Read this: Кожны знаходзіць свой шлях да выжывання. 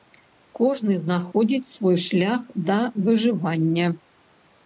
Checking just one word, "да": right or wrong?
right